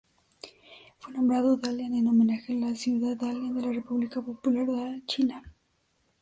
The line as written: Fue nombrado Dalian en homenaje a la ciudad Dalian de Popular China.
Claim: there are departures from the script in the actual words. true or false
true